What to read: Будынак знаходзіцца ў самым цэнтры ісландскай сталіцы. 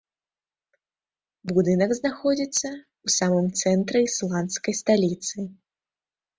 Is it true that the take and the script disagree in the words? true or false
false